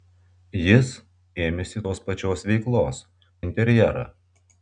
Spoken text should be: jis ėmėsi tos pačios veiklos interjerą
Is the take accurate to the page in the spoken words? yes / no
yes